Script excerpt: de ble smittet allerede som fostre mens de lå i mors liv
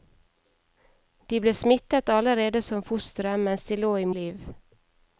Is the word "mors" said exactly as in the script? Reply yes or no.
no